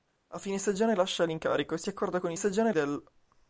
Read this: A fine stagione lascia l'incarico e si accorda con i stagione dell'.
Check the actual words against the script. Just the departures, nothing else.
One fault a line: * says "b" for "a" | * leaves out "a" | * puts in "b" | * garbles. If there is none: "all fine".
all fine